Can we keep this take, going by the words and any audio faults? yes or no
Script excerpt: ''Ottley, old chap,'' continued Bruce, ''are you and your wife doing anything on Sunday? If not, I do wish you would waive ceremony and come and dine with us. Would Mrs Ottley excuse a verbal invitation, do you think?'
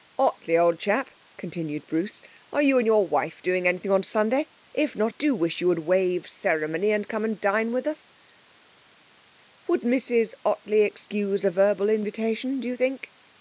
no